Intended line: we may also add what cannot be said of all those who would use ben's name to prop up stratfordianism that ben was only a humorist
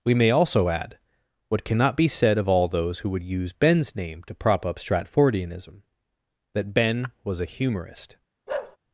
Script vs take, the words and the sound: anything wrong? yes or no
yes